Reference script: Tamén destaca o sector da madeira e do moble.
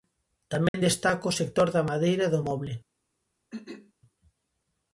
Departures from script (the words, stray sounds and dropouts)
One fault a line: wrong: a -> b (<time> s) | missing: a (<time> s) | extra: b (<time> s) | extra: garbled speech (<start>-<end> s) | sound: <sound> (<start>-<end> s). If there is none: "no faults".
sound: dropout (0.7-0.7 s)
sound: throat clearing (3.5-3.9 s)